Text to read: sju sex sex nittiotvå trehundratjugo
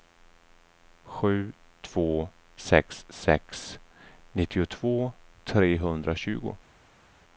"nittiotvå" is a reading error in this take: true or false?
false